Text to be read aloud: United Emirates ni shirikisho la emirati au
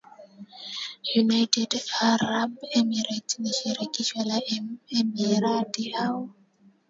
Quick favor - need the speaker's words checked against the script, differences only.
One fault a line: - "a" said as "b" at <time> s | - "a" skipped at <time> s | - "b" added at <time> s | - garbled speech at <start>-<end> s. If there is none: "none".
- "Arab" added at 2.1 s